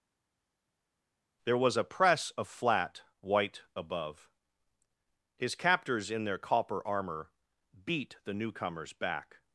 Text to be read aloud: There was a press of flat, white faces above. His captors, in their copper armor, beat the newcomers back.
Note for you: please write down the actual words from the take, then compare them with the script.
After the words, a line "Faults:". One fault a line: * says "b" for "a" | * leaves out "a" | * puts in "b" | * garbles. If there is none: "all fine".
There was a press of flat, white above. His captors, in their copper armor, beat the newcomers back.
Faults:
* leaves out "faces"